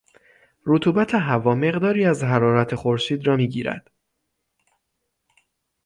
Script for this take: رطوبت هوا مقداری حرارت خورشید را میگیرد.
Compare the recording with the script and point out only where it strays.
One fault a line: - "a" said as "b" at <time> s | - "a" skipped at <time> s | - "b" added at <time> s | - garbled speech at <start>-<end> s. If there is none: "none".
- "از" added at 2.0 s